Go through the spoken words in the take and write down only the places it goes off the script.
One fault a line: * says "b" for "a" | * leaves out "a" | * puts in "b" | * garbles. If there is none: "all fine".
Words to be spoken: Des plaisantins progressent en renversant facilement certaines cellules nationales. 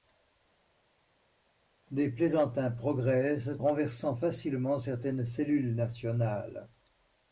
* leaves out "en"